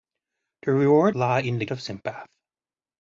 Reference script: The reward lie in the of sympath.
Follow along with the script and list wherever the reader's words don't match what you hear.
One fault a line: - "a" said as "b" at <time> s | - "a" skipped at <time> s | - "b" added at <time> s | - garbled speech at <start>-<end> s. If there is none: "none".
none